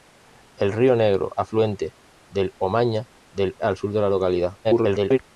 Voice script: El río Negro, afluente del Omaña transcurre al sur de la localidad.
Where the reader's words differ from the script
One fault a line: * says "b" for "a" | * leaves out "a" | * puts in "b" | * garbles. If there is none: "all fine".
* says "del" for "transcurre"
* garbles